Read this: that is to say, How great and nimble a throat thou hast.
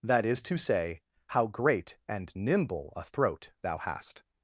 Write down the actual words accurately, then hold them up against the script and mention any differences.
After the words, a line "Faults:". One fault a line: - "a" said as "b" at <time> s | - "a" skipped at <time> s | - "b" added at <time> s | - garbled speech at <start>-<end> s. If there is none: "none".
that is to say, How great and nimble a throat thou hast.
Faults:
none